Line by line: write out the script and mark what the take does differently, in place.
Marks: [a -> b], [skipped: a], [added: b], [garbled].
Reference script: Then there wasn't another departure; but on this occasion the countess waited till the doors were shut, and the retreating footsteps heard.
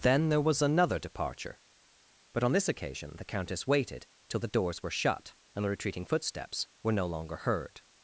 Then there [wasn't -> was] another departure; but on this occasion the countess waited till the doors were shut, and the retreating footsteps [added: were no longer] heard.